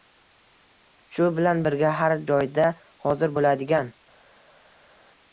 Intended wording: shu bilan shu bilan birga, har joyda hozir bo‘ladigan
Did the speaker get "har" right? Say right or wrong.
right